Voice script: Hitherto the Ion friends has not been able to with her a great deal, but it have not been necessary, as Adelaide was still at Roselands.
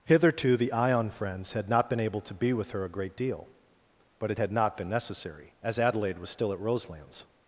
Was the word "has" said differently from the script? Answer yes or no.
yes